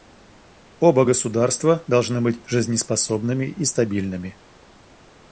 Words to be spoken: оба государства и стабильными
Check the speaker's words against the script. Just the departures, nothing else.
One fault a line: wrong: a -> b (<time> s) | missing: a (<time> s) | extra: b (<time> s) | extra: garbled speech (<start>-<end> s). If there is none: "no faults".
extra: должны быть жизнеспособными (1.9 s)